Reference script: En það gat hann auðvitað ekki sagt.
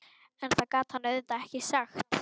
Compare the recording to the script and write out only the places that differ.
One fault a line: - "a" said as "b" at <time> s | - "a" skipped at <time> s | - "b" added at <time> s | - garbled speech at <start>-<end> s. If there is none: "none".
none